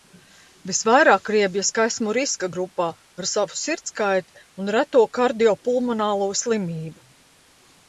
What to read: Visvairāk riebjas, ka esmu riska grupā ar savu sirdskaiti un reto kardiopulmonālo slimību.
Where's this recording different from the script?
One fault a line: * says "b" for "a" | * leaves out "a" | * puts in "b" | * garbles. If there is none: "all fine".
all fine